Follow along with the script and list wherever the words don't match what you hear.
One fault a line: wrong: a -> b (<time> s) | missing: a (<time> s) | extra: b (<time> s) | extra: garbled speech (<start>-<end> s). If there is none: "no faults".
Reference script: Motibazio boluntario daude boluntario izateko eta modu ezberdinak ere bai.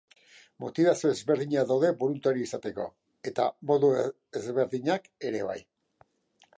wrong: boluntario -> ezberdinak (1.1 s)